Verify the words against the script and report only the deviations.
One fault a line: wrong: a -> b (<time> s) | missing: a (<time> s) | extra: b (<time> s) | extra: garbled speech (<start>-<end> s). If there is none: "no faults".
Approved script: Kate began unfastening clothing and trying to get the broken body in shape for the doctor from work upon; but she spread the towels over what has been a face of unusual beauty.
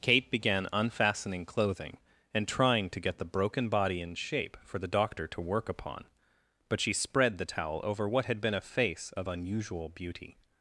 wrong: from -> to (5.3 s)
wrong: towels -> towel (7.4 s)
wrong: has -> had (8.2 s)